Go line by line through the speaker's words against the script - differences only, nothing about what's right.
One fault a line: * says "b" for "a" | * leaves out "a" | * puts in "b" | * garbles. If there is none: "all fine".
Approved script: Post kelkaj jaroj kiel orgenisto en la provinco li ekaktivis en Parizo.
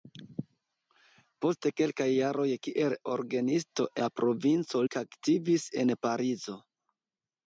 * leaves out "en"
* leaves out "li"